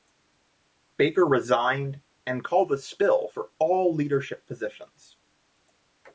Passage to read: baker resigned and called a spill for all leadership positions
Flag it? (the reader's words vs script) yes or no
no